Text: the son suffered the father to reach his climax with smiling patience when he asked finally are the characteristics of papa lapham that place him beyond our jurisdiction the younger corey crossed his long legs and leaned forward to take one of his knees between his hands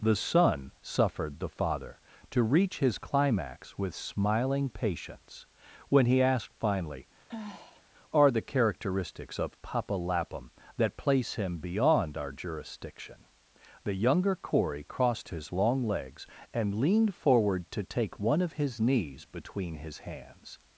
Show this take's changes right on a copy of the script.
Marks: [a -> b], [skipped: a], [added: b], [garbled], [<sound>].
the son suffered the father to reach his climax with smiling patience when he asked finally [sigh] are the characteristics of papa lapham that place him beyond our jurisdiction the younger corey crossed his long legs and leaned forward to take one of his knees between his hands